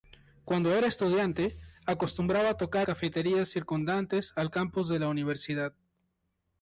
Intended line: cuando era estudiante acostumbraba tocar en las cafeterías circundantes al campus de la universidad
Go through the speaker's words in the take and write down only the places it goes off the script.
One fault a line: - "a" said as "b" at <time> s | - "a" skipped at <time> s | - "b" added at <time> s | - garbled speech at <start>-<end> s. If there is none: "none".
- "en las" skipped at 2.9 s